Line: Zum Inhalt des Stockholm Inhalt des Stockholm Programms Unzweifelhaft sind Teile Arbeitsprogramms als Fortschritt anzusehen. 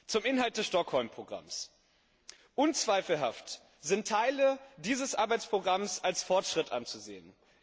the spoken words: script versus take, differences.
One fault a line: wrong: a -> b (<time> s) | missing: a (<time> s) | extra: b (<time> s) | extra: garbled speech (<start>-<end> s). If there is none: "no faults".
missing: Inhalt des Stockholm (1.1 s)
extra: dieses (4.8 s)